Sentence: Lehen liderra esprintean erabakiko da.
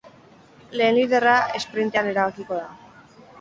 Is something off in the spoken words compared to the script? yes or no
no